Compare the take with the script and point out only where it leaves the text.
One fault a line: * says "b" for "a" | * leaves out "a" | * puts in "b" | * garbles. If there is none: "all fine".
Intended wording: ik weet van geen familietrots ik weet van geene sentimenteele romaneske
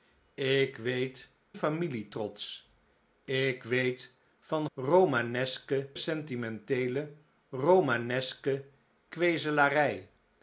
* leaves out "van geen"
* says "romaneske" for "geene"